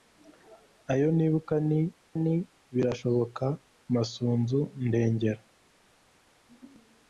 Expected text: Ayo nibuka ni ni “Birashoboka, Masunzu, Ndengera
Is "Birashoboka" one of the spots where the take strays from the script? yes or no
no